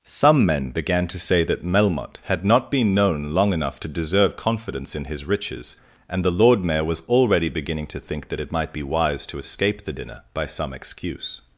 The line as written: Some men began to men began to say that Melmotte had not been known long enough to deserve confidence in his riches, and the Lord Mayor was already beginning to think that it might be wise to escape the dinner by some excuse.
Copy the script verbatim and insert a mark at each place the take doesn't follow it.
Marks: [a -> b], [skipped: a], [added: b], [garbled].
Some men began to [skipped: men began to] say that Melmotte had not been known long enough to deserve confidence in his riches, and the Lord Mayor was already beginning to think that it might be wise to escape the dinner by some excuse.